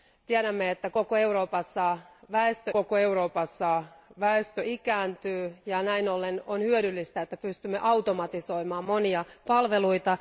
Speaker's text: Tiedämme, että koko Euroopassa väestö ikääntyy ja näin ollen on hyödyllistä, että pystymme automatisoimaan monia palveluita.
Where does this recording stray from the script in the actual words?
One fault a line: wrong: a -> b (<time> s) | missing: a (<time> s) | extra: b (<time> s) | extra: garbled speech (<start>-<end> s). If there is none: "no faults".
extra: koko Euroopassa väestö (2.7 s)